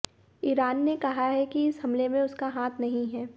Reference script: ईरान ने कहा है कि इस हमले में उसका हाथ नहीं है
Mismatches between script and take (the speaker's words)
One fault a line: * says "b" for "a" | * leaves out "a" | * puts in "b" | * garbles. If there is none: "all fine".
all fine